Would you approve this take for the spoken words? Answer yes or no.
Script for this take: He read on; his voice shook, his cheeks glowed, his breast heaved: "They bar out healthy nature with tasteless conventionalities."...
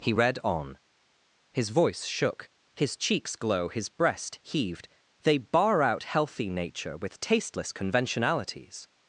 no